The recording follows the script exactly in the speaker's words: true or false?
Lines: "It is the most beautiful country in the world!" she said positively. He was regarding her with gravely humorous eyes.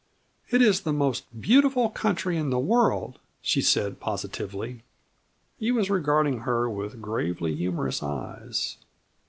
true